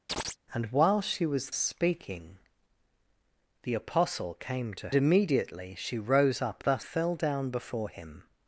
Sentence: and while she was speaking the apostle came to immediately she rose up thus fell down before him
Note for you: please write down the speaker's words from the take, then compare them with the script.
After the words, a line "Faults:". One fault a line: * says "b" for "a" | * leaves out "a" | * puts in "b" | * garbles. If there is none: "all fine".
and while she was speaking the apostle came to immediately she rose up thus fell down before him
Faults:
all fine